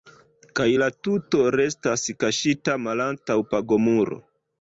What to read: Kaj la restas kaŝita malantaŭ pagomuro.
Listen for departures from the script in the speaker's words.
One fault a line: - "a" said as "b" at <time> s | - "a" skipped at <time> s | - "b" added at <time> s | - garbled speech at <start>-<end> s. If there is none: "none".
- "tuto" added at 1.1 s